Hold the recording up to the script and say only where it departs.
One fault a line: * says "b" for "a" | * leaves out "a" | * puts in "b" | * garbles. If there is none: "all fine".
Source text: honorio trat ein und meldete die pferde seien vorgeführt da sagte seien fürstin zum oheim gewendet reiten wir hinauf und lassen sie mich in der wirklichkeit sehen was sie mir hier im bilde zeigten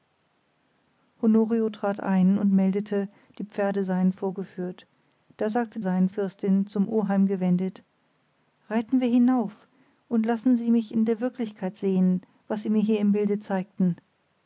all fine